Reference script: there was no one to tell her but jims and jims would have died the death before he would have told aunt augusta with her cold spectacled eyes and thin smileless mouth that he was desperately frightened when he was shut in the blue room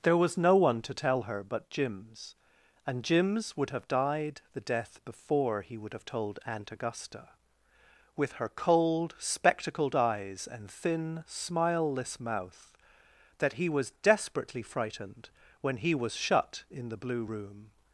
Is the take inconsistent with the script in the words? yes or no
no